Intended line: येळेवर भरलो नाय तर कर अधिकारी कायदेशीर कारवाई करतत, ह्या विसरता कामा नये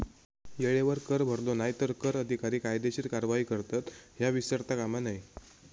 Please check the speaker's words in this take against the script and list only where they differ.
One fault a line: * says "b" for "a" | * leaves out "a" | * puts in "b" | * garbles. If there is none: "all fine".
* puts in "कर"